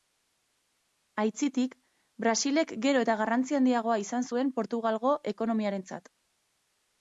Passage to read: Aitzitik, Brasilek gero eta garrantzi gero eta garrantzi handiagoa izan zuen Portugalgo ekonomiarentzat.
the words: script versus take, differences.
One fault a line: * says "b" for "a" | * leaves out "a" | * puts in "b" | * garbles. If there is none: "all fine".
* leaves out "gero eta garrantzi"